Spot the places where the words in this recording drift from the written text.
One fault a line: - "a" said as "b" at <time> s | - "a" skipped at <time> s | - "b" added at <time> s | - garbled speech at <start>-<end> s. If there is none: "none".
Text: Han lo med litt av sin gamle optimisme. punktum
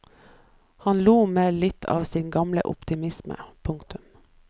none